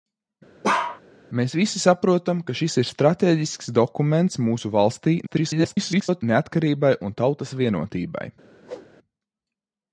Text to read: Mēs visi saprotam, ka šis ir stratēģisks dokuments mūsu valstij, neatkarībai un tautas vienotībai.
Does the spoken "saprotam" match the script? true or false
true